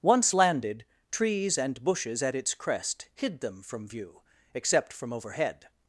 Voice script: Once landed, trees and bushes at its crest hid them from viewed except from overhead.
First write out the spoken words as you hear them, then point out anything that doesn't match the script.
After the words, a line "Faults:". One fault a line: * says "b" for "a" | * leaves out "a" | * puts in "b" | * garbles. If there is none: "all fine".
Once landed, trees and bushes at its crest hid them from view except from overhead.
Faults:
* says "view" for "viewed"